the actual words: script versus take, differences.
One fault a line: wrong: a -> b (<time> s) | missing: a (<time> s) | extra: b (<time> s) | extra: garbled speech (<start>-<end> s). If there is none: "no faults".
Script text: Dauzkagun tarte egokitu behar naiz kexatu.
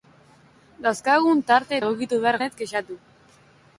no faults